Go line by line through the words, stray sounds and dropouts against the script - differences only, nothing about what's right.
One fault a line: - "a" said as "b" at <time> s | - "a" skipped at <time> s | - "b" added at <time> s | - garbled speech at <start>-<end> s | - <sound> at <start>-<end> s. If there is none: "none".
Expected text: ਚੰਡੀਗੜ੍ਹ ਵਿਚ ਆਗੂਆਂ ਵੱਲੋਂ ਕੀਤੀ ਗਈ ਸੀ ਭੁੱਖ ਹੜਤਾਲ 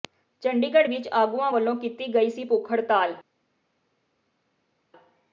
none